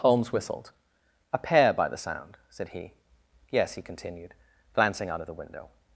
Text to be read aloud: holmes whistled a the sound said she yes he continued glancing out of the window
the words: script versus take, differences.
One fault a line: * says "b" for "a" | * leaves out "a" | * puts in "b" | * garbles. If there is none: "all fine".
* puts in "pair by"
* says "he" for "she"